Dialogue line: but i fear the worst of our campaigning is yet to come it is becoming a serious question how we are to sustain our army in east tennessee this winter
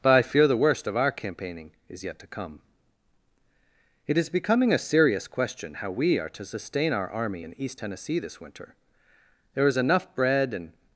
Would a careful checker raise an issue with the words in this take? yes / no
yes